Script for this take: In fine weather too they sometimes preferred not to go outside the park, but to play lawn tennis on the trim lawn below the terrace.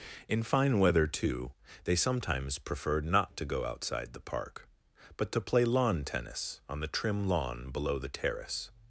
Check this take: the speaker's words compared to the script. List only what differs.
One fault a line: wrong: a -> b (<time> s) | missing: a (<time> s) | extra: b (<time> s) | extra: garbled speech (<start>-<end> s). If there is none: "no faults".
no faults